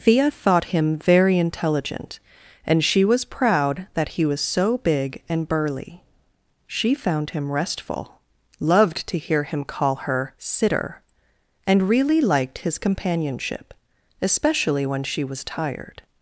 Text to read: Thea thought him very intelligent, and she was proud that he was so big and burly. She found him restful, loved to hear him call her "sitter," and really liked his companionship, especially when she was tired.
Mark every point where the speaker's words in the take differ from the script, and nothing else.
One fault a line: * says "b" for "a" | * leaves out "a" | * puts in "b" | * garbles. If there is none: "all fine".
all fine